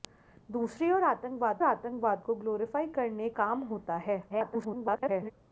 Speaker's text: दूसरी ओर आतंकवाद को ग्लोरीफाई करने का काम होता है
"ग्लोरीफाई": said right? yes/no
yes